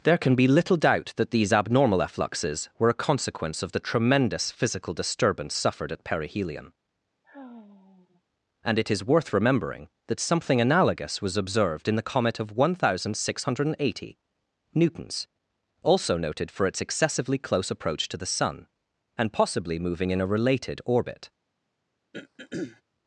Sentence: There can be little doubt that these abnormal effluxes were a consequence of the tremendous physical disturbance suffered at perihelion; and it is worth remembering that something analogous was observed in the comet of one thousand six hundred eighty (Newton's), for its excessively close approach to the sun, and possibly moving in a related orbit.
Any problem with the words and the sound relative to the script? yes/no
yes